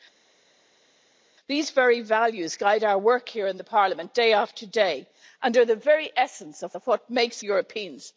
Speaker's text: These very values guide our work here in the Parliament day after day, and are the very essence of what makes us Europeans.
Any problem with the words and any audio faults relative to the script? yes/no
yes